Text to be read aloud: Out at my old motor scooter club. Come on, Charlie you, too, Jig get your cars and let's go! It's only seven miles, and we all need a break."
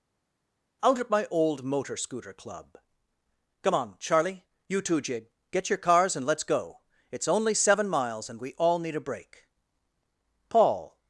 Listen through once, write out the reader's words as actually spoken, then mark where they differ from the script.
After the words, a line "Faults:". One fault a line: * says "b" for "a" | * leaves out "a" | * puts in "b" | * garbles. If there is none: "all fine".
Out at my old motor scooter club. Come on, Charlie you, too, Jig get your cars and let's go! It's only seven miles, and we all need a break." Paul
Faults:
* puts in "Paul"